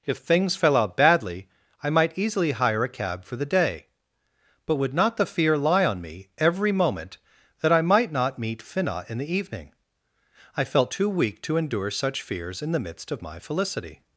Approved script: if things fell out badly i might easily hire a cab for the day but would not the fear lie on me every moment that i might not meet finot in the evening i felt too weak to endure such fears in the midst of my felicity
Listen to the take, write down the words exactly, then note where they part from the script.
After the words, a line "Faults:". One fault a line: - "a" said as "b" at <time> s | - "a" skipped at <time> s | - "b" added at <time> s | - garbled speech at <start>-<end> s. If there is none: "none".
if things fell out badly i might easily hire a cab for the day but would not the fear lie on me every moment that i might not meet finot in the evening i felt too weak to endure such fears in the midst of my felicity
Faults:
none